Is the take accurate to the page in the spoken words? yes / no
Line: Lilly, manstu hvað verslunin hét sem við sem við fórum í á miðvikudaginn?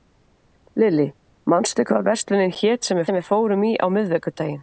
yes